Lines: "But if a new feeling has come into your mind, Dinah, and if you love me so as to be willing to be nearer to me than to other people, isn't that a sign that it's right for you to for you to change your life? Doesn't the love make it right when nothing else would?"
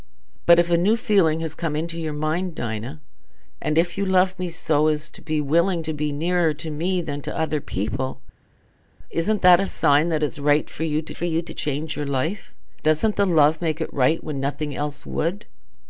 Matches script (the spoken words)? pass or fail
pass